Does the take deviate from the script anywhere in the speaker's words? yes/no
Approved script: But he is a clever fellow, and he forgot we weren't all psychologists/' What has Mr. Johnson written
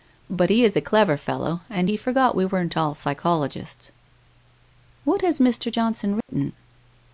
no